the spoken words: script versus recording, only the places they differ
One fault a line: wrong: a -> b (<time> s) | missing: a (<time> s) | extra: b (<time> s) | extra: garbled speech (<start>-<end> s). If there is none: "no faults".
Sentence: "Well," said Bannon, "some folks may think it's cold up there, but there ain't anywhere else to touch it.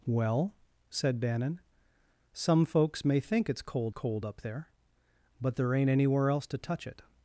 extra: cold (3.9 s)